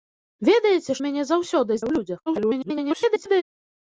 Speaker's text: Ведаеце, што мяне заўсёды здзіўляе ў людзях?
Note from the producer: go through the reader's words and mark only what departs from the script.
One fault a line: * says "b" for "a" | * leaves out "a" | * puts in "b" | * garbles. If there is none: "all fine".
* leaves out "што"
* leaves out "здзіўляе"
* garbles